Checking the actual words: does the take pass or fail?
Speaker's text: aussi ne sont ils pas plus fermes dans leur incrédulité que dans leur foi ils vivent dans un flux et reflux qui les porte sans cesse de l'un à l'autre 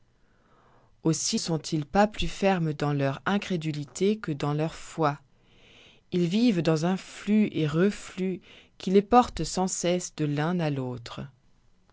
fail